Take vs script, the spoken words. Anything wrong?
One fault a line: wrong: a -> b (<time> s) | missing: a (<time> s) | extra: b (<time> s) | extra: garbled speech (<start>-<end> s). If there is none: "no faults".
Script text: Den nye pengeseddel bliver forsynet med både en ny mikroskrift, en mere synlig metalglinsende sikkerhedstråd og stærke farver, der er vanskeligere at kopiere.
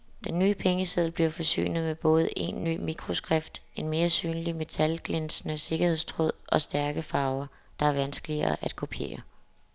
no faults